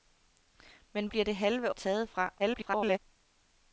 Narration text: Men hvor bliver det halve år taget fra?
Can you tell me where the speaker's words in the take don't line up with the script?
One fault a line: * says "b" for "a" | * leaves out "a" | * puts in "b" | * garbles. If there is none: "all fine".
* leaves out "hvor"
* leaves out "år"
* garbles